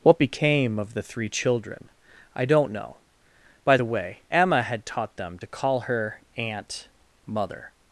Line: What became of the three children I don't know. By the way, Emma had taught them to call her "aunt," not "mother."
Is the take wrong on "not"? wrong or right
wrong